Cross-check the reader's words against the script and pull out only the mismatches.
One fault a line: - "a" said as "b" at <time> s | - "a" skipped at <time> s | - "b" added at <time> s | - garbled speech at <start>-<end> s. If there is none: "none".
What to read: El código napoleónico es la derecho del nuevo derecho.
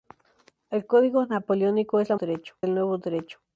none